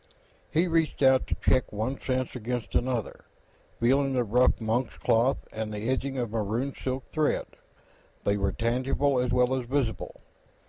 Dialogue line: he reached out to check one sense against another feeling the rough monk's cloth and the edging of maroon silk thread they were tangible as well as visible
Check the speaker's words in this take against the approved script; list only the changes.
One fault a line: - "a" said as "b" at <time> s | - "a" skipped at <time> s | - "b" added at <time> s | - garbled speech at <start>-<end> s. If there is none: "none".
none